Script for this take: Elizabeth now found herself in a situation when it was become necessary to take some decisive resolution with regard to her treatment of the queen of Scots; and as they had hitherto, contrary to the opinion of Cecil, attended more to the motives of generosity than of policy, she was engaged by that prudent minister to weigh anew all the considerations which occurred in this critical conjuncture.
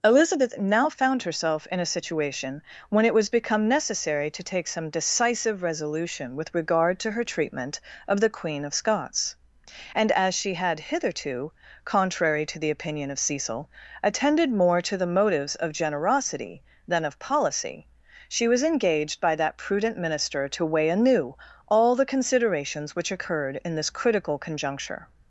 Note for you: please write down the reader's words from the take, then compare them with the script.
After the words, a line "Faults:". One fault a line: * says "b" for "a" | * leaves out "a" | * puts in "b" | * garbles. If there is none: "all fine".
Elizabeth now found herself in a situation when it was become necessary to take some decisive resolution with regard to her treatment of the queen of Scots; and as she had hitherto, contrary to the opinion of Cecil, attended more to the motives of generosity than of policy, she was engaged by that prudent minister to weigh anew all the considerations which occurred in this critical conjuncture.
Faults:
* says "she" for "they"